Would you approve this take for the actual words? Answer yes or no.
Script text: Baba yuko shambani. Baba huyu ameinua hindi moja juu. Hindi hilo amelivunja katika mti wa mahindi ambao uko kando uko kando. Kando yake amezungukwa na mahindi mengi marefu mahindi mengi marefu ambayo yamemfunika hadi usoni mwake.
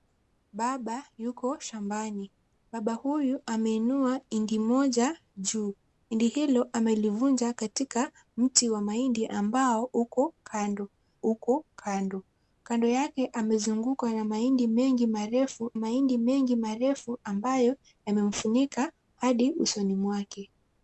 yes